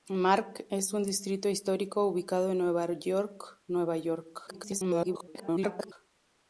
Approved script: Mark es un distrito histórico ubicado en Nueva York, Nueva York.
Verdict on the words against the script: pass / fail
fail